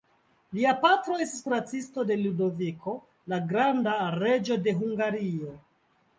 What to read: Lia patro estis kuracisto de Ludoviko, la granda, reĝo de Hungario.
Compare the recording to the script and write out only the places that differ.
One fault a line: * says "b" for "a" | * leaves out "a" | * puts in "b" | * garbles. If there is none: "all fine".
all fine